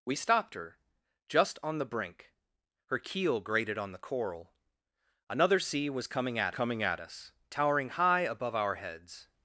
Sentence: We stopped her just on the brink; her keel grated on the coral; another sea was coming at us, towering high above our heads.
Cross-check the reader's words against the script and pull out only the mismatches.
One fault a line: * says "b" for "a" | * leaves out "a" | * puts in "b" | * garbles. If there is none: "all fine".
* puts in "coming at"